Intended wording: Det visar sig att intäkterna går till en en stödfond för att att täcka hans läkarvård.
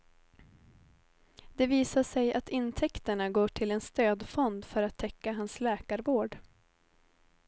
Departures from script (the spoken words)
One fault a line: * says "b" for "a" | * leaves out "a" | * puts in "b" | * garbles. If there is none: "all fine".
* leaves out "en"
* leaves out "att"